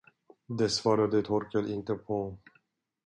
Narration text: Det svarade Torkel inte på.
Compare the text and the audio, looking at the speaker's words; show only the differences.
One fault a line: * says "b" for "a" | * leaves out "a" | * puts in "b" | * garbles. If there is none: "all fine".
all fine